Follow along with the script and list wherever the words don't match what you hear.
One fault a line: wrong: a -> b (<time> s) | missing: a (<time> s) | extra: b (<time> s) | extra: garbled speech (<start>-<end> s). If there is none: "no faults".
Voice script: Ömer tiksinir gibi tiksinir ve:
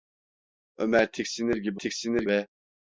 no faults